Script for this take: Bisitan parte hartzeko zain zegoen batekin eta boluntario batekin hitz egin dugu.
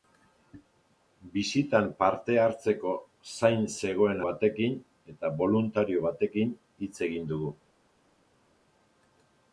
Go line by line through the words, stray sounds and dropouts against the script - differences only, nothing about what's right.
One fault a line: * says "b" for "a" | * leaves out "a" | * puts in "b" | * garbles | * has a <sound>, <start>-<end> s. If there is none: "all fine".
all fine